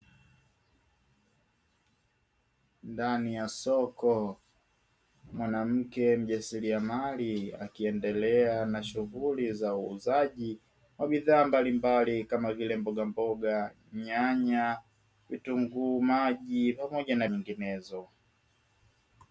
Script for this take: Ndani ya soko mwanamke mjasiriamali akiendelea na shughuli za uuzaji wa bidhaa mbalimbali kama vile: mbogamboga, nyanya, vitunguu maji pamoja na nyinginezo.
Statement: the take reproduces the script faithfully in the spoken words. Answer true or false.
true